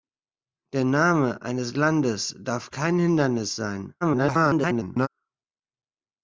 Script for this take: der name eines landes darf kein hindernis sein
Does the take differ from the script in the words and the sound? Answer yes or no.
yes